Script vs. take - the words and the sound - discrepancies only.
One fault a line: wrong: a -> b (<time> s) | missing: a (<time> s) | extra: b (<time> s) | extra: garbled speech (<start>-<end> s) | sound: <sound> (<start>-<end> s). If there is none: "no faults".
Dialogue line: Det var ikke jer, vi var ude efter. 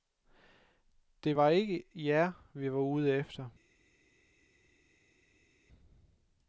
no faults